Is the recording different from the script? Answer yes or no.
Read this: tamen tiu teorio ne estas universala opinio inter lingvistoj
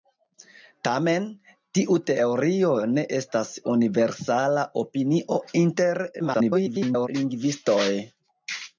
yes